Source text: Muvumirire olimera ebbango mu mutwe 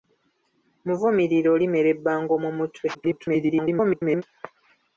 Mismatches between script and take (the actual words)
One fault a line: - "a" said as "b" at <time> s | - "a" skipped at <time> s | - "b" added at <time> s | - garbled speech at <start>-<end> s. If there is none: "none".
- garbled speech at 2.9-4.2 s